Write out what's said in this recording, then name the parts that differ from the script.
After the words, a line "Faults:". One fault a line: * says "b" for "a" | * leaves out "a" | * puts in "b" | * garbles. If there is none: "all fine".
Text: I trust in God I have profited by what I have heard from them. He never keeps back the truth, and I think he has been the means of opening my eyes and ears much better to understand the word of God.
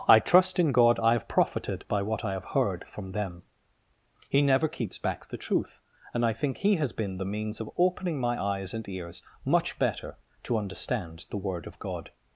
I trust in God I have profited by what I have heard from them. He never keeps back the truth, and I think he has been the means of opening my eyes and ears much better to understand the word of God.
Faults:
all fine